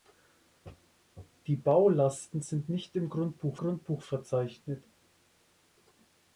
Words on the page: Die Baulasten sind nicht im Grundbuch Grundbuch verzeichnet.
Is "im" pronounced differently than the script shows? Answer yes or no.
no